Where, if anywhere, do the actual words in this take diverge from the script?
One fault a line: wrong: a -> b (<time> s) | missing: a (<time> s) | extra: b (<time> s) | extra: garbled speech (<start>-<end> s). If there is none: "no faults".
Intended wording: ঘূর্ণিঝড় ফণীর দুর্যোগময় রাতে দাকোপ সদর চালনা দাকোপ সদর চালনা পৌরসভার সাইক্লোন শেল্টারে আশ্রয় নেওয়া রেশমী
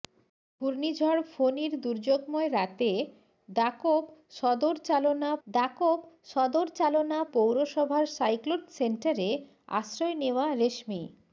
no faults